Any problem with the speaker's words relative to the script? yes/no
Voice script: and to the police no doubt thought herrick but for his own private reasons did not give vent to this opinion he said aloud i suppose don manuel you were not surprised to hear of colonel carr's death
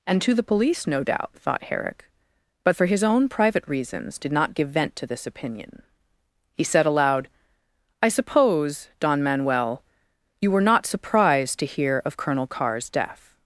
no